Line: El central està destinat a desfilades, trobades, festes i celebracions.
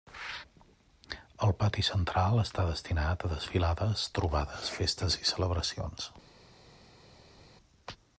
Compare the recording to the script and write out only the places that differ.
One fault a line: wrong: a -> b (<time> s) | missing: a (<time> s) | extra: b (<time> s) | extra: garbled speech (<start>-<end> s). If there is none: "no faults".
extra: pati (1.6 s)